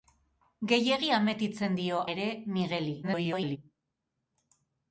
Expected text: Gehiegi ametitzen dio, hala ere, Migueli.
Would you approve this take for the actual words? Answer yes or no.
no